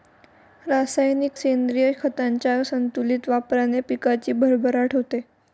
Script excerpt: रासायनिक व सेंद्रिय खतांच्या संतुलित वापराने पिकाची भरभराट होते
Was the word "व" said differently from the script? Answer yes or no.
yes